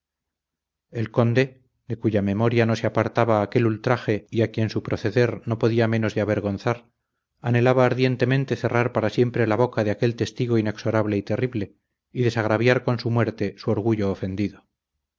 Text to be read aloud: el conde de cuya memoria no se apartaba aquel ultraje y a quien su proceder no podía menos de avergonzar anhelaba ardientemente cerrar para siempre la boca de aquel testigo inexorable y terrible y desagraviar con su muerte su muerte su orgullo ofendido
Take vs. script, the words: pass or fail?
fail